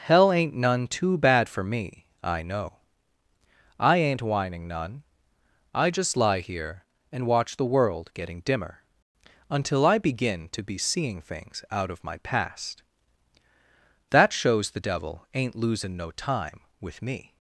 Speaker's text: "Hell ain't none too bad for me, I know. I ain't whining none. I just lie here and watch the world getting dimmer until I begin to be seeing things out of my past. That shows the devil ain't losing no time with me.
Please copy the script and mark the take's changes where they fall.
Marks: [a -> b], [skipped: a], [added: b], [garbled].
"Hell ain't none too bad for me, I know. I ain't whining none. I just lie here and watch the world getting dimmer until I begin to be seeing things out of my past. That shows the devil ain't losing no time with me.